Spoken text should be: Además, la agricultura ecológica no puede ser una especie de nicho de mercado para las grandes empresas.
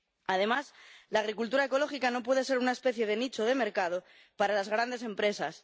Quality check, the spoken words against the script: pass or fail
pass